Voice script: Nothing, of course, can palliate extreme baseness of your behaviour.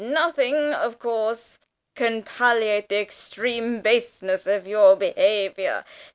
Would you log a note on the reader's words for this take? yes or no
yes